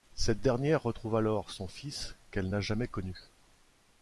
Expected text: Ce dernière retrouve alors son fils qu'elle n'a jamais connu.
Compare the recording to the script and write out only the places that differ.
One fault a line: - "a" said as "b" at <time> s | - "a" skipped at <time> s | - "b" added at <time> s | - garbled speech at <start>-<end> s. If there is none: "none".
- "Ce" said as "Cette" at 0.1 s